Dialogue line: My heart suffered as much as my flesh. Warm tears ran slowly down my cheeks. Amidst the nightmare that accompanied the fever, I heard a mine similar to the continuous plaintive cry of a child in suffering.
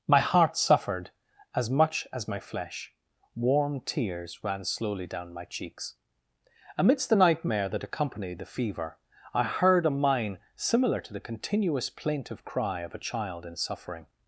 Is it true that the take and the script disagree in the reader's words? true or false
false